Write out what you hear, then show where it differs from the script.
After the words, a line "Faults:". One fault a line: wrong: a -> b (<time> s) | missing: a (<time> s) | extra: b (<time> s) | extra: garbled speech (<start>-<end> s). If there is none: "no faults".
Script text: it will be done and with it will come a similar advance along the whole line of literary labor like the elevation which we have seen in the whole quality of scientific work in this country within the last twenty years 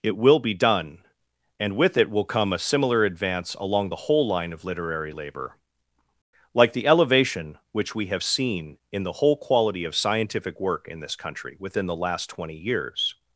it will be done and with it will come a similar advance along the whole line of literary labor like the elevation which we have seen in the whole quality of scientific work in this country within the last twenty years
Faults:
no faults